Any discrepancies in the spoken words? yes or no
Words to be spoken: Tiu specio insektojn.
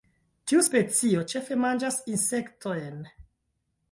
yes